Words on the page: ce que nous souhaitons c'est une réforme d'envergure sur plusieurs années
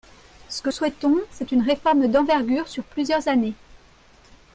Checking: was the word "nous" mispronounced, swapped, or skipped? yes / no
yes